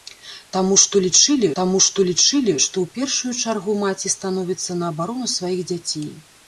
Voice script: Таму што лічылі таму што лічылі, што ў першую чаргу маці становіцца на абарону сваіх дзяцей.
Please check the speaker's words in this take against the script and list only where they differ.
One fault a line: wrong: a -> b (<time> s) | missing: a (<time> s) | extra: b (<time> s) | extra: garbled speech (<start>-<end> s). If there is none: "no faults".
no faults